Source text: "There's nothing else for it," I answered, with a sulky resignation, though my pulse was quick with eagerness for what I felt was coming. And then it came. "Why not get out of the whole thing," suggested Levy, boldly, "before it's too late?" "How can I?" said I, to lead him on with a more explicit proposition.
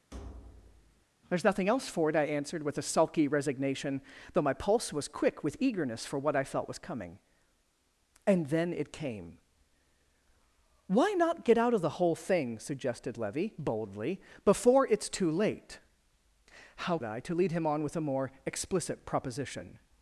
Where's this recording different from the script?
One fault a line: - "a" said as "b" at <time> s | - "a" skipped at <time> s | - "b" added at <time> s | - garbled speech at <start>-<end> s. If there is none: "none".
- "can I said" skipped at 17.0 s